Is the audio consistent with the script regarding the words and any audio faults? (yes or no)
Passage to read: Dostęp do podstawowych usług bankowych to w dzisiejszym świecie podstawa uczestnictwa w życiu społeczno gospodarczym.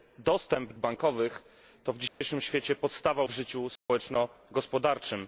no